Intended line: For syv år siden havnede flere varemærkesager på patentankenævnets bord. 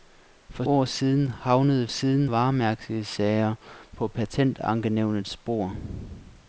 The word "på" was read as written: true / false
true